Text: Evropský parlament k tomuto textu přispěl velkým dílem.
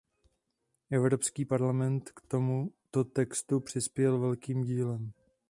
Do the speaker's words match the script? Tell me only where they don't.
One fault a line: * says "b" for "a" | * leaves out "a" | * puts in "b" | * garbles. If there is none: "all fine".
all fine